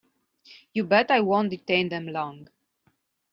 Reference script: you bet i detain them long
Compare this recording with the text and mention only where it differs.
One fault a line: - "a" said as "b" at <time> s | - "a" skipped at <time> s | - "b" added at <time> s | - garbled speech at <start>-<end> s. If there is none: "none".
- "won't" added at 1.2 s